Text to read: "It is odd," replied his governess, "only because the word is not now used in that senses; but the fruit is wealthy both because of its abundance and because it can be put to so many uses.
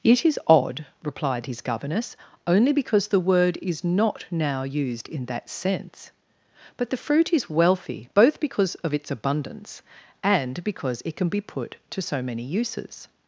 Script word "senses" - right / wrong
wrong